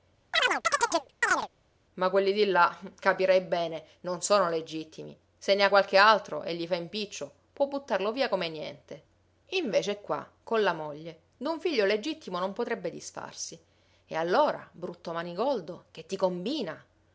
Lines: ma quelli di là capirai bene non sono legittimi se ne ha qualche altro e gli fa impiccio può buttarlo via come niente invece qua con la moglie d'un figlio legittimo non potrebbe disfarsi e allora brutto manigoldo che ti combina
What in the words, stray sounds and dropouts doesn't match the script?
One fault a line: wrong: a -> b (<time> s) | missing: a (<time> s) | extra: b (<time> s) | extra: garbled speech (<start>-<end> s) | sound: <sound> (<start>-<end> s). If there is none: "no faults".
sound: chirp (0.3-1.5 s)